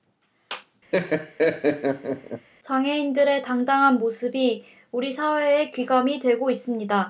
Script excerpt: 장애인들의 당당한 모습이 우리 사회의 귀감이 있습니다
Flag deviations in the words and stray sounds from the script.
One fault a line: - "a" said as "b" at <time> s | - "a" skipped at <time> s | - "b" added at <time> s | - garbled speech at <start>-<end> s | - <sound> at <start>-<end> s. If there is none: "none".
- laugh at 0.9-2.5 s
- "되고" added at 6.2 s